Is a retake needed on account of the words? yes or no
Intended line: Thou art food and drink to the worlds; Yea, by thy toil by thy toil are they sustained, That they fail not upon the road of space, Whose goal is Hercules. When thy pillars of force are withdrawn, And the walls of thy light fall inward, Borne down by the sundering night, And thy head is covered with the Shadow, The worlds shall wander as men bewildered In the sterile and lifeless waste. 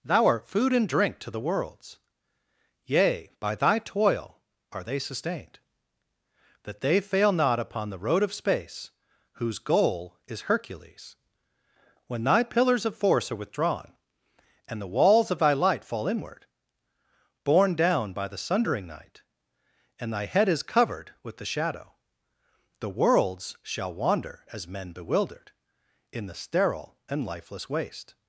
yes